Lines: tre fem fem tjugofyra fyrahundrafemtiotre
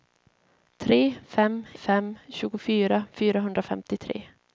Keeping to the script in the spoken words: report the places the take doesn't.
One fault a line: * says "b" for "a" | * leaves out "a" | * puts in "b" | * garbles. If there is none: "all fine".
all fine